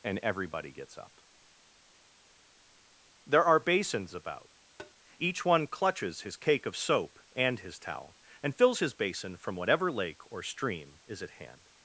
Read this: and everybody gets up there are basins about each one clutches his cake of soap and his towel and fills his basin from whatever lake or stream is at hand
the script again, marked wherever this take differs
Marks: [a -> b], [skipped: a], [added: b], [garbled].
and everybody gets up there are basins about each one clutches his cake of soap and his towel and fills his basin from whatever lake or stream is at hand